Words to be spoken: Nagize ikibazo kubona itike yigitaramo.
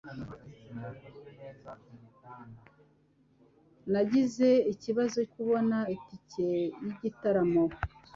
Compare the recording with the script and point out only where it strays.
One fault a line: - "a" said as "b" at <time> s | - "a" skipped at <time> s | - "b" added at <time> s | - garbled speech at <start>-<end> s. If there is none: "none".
none